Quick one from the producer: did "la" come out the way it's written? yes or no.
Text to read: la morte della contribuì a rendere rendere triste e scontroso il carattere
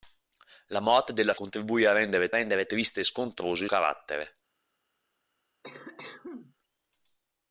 yes